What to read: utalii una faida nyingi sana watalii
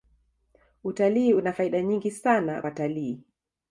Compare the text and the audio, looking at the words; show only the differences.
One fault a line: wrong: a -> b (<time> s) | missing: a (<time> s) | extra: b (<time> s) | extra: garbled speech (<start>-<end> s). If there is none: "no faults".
no faults